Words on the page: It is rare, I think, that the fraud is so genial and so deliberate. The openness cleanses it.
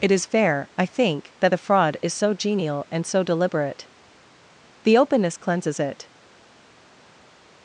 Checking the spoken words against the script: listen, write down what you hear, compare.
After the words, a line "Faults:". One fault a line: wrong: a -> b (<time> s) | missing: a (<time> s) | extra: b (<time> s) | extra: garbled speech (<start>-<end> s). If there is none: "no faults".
It is fair, I think, that the fraud is so genial and so deliberate. The openness cleanses it.
Faults:
wrong: rare -> fair (0.2 s)